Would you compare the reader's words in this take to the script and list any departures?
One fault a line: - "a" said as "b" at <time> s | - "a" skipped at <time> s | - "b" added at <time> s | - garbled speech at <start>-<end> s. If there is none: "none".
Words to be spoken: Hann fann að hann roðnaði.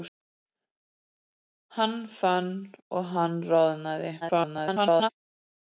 - garbled speech at 4.2-5.1 s